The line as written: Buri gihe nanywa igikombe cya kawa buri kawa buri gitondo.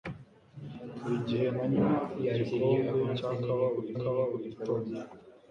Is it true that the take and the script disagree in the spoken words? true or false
false